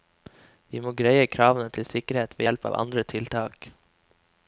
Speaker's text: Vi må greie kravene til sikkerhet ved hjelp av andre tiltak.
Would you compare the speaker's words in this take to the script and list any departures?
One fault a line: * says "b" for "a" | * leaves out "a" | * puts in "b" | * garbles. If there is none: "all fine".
all fine